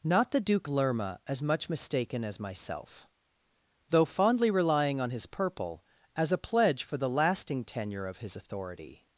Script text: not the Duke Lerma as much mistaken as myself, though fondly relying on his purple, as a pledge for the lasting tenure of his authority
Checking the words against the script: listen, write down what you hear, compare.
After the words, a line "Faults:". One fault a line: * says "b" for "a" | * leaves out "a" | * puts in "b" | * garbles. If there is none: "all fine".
not the Duke Lerma as much mistaken as myself, though fondly relying on his purple, as a pledge for the lasting tenure of his authority
Faults:
all fine